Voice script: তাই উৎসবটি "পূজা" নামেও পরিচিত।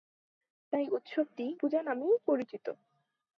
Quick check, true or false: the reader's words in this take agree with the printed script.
true